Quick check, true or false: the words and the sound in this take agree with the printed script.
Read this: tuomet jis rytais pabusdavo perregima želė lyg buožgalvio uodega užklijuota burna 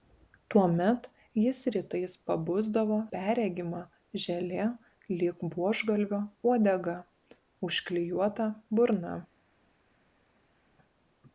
true